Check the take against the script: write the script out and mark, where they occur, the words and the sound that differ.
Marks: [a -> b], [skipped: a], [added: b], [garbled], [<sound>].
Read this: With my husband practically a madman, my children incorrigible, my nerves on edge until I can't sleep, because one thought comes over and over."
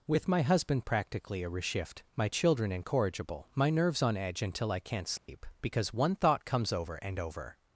With my husband practically a [madman, -> reshift] my children incorrigible, my nerves on edge until I can't sleep, [dropout] because one thought comes over and over."